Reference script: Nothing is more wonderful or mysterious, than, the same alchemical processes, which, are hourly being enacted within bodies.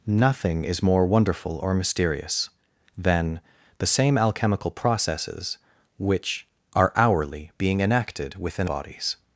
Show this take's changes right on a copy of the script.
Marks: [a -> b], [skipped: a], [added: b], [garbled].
Nothing is more wonderful or mysterious, than, the same alchemical processes, which, are hourly being enacted within bodies.